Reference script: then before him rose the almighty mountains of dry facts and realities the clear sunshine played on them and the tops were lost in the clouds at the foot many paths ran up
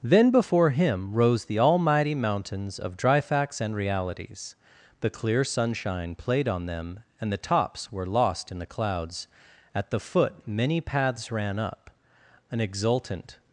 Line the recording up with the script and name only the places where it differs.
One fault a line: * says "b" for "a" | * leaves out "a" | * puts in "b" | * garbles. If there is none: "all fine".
* puts in "an exultant"